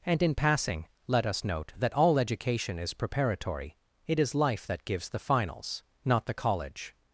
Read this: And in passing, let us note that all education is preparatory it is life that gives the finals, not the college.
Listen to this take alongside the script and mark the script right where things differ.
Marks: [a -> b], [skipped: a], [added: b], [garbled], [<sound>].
And in passing, let us note that all education is preparatory it is life that gives the finals, not the college.